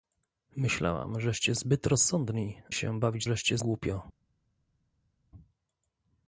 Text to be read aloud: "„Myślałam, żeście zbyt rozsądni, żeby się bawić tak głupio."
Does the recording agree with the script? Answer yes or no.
no